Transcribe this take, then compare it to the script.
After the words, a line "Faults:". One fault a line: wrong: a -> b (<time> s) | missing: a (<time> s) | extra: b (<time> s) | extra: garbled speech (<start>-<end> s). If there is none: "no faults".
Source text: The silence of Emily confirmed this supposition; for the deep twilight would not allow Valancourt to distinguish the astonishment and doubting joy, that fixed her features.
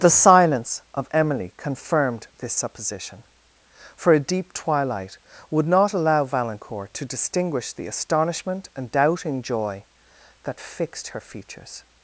The silence of Emily confirmed this supposition; for a deep twilight would not allow Valancourt to distinguish the astonishment and doubting joy, that fixed her features.
Faults:
wrong: the -> a (4.1 s)